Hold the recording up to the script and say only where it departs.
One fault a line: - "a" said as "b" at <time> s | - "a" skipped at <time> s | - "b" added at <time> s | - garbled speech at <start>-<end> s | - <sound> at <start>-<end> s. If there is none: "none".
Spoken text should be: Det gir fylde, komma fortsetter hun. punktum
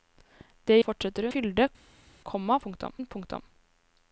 - "gir" said as "fortsetter" at 0.9 s
- "fortsetter" said as "punktum" at 2.7 s